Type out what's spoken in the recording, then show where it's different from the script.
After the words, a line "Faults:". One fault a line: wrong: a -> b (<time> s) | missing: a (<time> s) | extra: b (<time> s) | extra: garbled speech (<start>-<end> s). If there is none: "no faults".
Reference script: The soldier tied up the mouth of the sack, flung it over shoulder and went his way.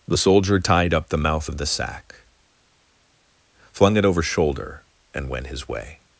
The soldier tied up the mouth of the sack, flung it over shoulder and went his way.
Faults:
no faults